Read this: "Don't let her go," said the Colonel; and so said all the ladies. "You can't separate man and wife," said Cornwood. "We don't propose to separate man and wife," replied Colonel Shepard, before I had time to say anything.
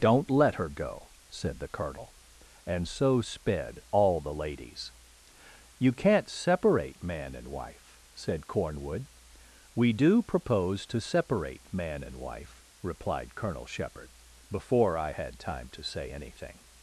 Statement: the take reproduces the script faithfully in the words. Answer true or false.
false